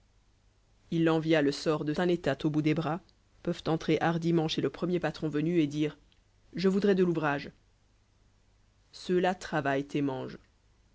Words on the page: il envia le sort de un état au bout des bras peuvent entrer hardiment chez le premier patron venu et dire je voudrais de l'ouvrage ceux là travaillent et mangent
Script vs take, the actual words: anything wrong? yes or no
no